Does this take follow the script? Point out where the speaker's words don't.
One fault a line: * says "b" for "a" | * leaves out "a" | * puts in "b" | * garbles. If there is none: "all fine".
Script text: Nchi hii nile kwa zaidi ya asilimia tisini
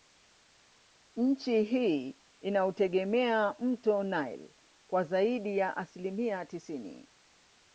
* puts in "inautegemea mto"